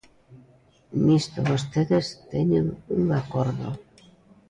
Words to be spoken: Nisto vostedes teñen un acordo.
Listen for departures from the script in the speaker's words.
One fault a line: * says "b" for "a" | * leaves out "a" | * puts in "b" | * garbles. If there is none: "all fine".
all fine